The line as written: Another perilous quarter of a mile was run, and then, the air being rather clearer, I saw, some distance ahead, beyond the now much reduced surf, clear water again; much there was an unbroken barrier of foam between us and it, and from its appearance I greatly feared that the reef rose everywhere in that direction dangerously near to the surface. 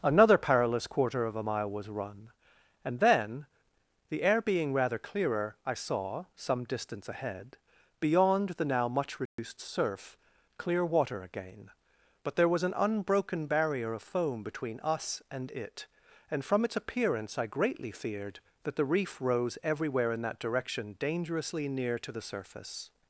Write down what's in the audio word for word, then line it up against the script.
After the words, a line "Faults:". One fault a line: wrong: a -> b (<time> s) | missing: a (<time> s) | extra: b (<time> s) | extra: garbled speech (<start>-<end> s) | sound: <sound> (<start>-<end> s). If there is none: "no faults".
Another perilous quarter of a mile was run, and then, the air being rather clearer, I saw, some distance ahead, beyond the now much reduced surf, clear water again; but there was an unbroken barrier of foam between us and it, and from its appearance I greatly feared that the reef rose everywhere in that direction dangerously near to the surface.
Faults:
sound: dropout (9.3-9.4 s)
wrong: much -> but (12.2 s)